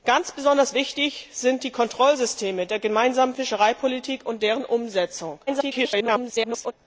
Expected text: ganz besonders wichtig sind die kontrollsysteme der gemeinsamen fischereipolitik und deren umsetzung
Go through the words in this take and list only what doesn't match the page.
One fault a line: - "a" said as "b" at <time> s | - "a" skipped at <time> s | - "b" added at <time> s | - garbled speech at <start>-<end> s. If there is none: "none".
- garbled speech at 5.5-6.7 s